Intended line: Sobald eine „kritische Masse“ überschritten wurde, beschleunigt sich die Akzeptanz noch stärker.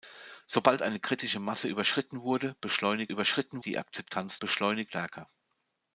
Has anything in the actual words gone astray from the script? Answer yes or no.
yes